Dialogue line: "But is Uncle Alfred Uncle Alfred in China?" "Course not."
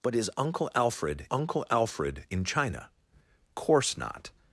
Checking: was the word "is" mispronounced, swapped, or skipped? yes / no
no